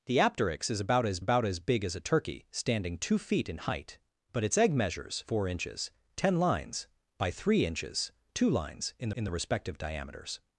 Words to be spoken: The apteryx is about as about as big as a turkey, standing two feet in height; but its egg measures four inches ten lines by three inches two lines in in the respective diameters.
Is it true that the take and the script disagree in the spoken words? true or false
false